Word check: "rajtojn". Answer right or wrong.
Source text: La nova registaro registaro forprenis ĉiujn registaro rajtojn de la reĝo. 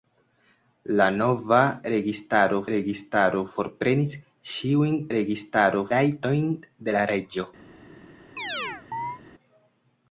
right